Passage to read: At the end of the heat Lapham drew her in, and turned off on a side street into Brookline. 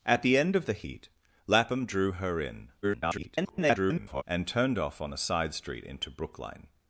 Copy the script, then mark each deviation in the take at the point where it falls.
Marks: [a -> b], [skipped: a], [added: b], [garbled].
At the end of the heat Lapham drew her in, [garbled] and turned off on a side street into Brookline.